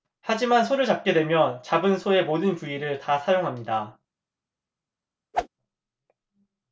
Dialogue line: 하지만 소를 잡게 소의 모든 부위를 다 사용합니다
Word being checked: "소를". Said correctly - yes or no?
yes